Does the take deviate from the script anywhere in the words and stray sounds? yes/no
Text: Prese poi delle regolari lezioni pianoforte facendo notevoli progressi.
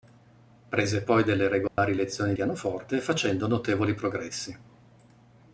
yes